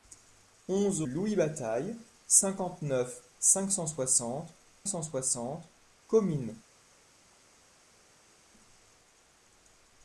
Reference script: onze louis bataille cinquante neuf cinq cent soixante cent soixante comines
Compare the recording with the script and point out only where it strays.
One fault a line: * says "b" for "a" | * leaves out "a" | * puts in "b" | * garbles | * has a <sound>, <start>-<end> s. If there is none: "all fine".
all fine